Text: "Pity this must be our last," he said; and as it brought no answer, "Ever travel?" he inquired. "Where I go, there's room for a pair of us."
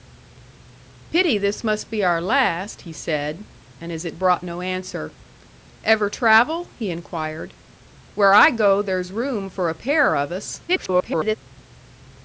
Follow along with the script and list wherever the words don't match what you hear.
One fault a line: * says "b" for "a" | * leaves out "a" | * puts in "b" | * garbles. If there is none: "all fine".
* garbles